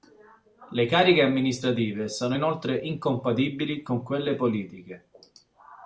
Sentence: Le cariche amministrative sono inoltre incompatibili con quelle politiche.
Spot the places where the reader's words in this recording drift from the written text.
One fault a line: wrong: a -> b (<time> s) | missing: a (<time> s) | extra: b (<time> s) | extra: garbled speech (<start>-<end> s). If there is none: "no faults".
no faults